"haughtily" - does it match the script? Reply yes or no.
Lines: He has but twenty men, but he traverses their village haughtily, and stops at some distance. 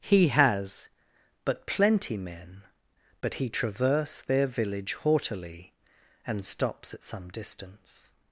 yes